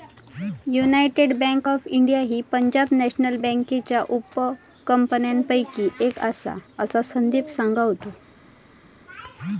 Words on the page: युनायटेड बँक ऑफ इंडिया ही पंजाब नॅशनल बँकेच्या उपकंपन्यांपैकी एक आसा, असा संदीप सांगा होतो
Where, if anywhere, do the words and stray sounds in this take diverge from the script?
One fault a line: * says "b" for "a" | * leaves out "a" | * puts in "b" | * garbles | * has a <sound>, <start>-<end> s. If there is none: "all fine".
all fine